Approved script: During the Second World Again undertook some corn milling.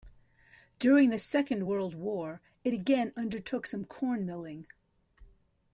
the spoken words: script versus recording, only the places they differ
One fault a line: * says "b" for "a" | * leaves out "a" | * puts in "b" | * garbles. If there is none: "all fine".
* puts in "War it"